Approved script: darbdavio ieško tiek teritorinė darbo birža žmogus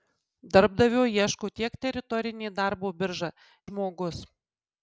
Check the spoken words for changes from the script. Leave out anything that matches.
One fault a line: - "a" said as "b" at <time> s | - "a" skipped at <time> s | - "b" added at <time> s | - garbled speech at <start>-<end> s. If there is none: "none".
none